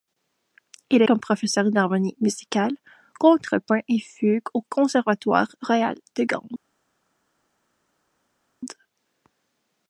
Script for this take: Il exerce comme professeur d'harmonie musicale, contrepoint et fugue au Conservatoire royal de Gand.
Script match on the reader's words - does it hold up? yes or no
no